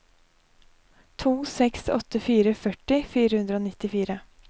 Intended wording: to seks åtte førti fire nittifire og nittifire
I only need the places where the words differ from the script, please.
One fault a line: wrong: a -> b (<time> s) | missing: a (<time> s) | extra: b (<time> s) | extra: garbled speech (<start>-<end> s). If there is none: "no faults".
extra: fire (2.3 s)
wrong: nittifire -> hundre (3.4 s)